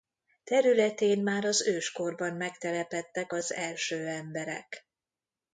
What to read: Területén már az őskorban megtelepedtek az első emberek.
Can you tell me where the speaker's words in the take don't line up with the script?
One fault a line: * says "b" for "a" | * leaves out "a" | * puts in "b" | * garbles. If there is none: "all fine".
all fine